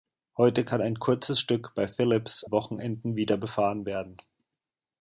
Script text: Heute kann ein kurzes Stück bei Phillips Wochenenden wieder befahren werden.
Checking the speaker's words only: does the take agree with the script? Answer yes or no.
yes